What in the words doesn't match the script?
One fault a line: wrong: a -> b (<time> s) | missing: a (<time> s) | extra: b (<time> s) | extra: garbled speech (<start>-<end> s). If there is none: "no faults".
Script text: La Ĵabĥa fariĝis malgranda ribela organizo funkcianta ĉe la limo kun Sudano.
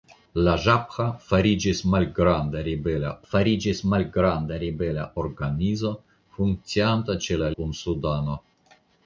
extra: fariĝis malgranda ribela (3.3 s)
missing: limo (7.5 s)